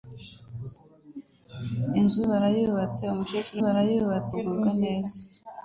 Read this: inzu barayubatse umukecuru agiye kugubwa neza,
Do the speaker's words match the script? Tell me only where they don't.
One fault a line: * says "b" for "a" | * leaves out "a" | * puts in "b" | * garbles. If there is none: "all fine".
* says "barayubatse" for "agiye"